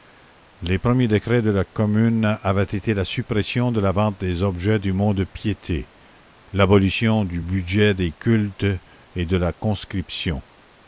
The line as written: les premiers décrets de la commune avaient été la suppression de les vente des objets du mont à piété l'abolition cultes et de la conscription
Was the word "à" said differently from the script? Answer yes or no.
yes